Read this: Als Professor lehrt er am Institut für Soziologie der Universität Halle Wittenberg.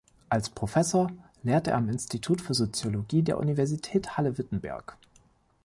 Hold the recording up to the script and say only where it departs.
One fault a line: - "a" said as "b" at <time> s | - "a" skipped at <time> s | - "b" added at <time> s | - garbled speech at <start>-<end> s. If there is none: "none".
none